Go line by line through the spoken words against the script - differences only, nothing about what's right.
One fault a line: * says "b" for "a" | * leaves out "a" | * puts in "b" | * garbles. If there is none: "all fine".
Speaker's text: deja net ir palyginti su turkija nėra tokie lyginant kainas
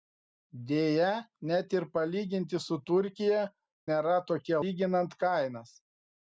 all fine